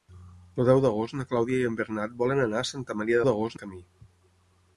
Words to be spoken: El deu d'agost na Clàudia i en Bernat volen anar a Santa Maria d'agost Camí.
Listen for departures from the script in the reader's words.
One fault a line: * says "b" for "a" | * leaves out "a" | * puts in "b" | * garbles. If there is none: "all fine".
all fine